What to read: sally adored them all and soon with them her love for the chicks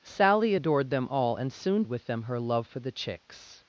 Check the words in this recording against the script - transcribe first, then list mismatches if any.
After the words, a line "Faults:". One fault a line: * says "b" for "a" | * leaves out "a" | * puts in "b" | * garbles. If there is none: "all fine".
sally adored them all and soon with them her love for the chicks
Faults:
all fine